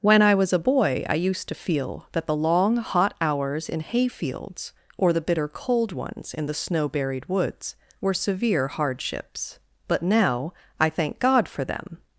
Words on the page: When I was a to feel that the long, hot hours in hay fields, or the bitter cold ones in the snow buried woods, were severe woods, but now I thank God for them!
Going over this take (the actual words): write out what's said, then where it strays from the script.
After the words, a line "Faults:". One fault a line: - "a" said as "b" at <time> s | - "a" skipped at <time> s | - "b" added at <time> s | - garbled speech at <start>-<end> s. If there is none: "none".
When I was a boy I used to feel that the long, hot hours in hay fields, or the bitter cold ones in the snow buried woods, were severe hardships, but now I thank God for them!
Faults:
- "boy I used" added at 0.7 s
- "woods" said as "hardships" at 8.7 s